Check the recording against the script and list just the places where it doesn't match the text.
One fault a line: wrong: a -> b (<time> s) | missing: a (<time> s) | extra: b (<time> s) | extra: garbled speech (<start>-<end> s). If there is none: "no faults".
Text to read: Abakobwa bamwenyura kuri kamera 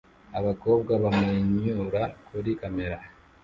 no faults